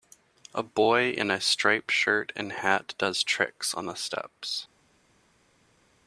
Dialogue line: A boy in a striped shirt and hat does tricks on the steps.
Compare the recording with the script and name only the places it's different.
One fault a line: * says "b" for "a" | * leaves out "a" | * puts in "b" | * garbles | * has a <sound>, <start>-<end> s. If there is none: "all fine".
all fine